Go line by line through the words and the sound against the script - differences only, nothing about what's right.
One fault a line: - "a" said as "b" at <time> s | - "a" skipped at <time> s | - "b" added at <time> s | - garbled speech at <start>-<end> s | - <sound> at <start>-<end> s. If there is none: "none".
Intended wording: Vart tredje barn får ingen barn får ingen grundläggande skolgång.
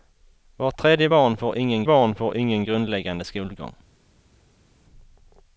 none